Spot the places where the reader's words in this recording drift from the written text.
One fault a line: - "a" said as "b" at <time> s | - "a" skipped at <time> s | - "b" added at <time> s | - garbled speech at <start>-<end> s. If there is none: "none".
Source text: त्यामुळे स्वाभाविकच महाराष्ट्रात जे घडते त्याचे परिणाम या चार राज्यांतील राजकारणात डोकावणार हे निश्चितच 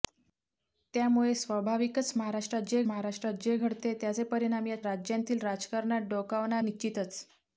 - "महाराष्ट्रात जे" added at 2.8 s
- "चार" skipped at 4.8 s
- "हे" skipped at 6.6 s